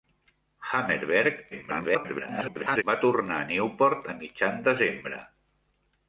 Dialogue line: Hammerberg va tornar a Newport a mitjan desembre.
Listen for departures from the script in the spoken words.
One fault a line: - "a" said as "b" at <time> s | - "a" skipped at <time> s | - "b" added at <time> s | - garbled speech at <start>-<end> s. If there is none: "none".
- garbled speech at 1.5-2.8 s